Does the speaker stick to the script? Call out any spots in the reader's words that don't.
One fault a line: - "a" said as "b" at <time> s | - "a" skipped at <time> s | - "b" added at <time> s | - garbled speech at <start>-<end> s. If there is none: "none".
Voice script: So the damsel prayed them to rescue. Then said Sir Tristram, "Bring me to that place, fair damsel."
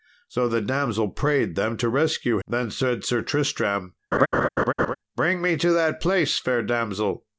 none